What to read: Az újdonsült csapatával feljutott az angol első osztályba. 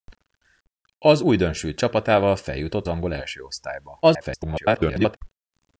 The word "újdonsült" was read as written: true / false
true